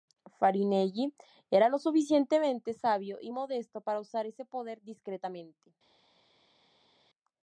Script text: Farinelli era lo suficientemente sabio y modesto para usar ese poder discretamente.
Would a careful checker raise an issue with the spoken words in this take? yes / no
no